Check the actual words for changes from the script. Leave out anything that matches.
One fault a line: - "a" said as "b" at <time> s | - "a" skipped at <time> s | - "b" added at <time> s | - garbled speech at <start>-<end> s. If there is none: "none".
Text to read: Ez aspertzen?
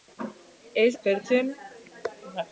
none